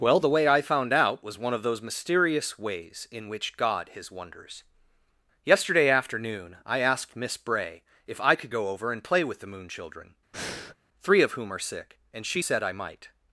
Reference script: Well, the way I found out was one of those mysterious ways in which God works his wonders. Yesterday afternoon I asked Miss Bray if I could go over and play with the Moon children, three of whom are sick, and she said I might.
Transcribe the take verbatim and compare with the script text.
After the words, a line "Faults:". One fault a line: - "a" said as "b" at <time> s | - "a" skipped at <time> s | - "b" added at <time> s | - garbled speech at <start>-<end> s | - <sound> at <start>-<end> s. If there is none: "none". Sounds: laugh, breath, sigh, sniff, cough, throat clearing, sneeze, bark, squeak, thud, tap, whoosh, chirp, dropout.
Well, the way I found out was one of those mysterious ways in which God his wonders. Yesterday afternoon I asked Miss Bray if I could go over and play with the Moon children, three of whom are sick, and she said I might.
Faults:
- "works" skipped at 3.9 s
- breath at 10.3-10.8 s